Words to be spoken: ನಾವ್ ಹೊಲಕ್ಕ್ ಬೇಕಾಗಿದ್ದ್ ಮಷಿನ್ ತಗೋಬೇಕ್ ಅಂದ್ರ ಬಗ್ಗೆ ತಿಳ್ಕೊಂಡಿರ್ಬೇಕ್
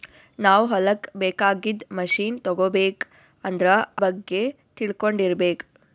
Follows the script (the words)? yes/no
yes